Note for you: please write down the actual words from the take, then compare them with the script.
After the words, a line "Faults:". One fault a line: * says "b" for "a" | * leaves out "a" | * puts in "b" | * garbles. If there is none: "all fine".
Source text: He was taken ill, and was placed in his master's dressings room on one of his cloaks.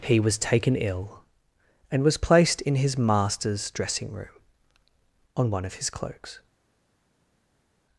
He was taken ill, and was placed in his master's dressing room on one of his cloaks.
Faults:
* says "dressing" for "dressings"